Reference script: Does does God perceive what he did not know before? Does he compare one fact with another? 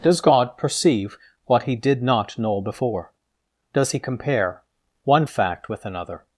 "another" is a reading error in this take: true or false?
false